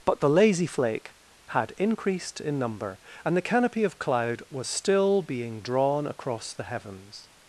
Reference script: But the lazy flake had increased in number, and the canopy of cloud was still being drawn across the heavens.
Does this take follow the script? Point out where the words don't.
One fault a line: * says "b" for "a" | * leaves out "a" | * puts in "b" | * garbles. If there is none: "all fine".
all fine